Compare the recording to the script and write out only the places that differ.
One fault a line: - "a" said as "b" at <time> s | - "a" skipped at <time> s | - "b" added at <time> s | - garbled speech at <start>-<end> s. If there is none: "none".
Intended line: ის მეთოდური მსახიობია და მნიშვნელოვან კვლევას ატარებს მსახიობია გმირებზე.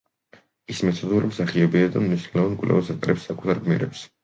- "მსახიობია" said as "საკუთარ" at 3.3 s